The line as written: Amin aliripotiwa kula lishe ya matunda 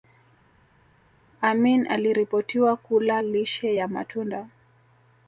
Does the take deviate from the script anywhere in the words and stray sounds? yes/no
no